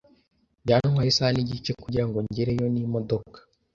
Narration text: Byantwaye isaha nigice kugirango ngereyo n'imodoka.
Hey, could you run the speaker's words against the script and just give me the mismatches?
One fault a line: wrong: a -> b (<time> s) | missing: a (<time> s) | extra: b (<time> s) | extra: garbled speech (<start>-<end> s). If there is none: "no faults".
no faults